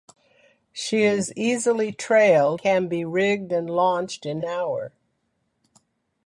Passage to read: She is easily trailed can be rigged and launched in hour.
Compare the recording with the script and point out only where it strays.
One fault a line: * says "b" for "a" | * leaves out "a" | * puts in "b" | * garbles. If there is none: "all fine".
all fine